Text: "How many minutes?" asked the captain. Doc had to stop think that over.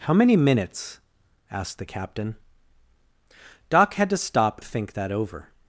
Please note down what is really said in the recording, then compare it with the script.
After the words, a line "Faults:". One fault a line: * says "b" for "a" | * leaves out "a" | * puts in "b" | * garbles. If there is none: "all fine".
"How many minutes?" asked the captain. Doc had to stop think that over.
Faults:
all fine